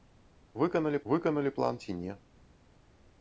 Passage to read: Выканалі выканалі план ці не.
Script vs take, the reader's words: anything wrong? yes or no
no